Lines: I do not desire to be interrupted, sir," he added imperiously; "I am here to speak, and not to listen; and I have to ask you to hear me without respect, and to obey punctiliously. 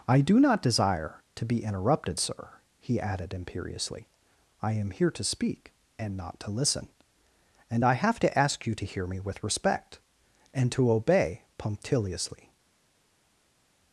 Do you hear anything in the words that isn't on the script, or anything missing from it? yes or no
yes